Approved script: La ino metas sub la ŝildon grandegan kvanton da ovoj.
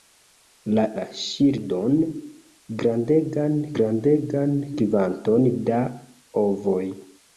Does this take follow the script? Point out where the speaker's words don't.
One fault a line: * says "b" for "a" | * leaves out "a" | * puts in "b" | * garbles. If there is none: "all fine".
* leaves out "ino metas sub"
* puts in "grandegan"